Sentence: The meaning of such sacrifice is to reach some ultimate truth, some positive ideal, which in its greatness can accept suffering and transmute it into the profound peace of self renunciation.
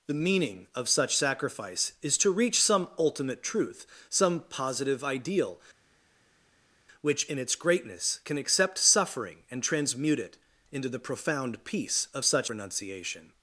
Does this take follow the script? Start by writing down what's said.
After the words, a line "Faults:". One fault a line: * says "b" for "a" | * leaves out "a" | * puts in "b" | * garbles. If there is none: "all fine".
The meaning of such sacrifice is to reach some ultimate truth, some positive ideal, which in its greatness can accept suffering and transmute it into the profound peace of such renunciation.
Faults:
* says "such" for "self"